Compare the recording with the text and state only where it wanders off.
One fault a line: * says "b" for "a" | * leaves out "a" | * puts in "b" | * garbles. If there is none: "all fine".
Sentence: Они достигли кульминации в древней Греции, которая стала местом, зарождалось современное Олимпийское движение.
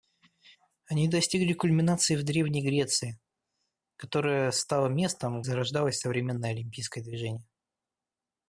all fine